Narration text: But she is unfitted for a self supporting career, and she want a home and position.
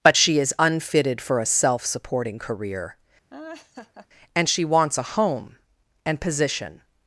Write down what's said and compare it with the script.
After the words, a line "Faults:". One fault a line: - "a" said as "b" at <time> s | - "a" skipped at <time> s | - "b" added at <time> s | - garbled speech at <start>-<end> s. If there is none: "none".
But she is unfitted for a self supporting career, and she wants a home and position.
Faults:
- "want" said as "wants" at 4.6 s